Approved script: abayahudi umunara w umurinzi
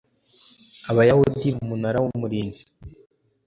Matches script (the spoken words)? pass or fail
pass